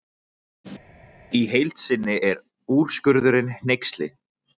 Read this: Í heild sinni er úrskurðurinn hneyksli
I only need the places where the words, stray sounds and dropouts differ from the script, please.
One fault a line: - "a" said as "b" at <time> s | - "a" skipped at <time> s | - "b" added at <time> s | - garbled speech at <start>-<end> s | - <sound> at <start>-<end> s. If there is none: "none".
none